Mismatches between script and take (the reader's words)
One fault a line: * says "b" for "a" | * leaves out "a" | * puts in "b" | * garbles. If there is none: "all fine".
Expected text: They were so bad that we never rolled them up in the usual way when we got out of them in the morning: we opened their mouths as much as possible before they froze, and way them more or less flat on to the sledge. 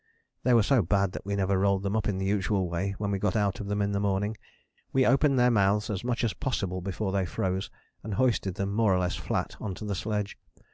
* says "hoisted" for "way"